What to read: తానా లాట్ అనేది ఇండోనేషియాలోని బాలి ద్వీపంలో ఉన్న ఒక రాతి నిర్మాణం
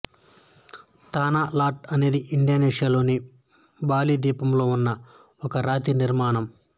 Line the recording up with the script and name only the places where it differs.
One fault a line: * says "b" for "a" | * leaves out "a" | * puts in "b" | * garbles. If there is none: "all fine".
all fine